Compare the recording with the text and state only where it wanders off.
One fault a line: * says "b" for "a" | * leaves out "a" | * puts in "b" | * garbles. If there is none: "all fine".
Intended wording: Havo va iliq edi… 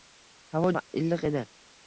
all fine